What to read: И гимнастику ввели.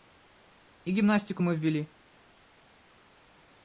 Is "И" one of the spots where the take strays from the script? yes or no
no